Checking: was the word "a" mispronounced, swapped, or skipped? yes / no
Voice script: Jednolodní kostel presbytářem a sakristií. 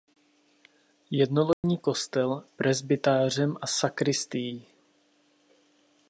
no